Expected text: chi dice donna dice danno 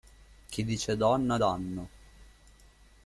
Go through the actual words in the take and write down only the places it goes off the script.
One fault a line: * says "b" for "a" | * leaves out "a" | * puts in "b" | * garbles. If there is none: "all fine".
* leaves out "dice"